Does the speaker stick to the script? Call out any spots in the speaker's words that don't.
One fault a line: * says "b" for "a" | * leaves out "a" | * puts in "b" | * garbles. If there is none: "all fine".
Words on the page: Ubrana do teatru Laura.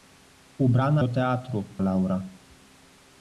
all fine